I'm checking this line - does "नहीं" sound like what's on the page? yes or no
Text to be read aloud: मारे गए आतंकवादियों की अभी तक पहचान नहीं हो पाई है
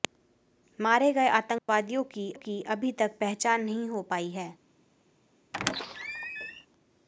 yes